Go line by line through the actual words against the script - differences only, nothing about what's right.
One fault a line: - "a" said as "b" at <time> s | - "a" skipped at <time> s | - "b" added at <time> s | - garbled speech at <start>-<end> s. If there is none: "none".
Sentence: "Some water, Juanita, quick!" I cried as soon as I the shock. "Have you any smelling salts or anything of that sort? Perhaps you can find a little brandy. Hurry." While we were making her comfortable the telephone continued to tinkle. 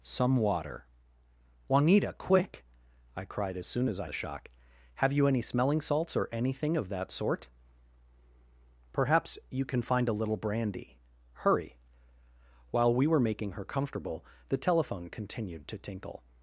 none